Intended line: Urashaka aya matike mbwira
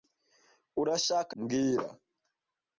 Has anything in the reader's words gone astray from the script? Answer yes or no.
yes